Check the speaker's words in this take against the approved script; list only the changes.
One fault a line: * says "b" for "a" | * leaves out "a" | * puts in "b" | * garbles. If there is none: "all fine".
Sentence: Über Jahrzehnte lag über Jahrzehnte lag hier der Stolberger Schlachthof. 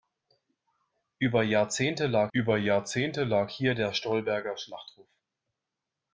all fine